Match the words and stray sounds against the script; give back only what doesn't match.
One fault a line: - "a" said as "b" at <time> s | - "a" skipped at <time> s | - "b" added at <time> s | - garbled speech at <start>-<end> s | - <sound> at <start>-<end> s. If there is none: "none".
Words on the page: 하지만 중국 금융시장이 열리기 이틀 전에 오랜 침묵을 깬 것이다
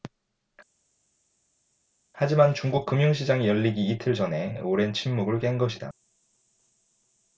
none